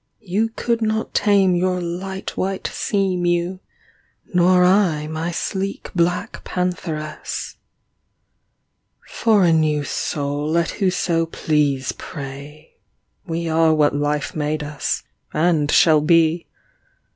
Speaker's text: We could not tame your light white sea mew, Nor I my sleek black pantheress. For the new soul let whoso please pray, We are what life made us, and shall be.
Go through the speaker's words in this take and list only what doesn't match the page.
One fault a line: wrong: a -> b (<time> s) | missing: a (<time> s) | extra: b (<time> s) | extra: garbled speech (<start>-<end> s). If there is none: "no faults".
wrong: We -> You (0.2 s)
wrong: the -> a (9.4 s)